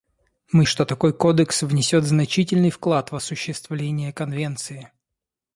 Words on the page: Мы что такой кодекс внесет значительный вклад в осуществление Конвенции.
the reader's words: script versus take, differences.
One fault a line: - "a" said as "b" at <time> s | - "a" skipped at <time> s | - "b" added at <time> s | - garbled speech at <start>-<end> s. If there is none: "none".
none